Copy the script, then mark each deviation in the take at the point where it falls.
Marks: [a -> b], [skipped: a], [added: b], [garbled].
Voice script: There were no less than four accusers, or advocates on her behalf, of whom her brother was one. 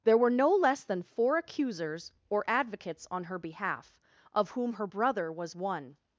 There were no less than four accusers, or advocates on her behalf, of whom her brother was one.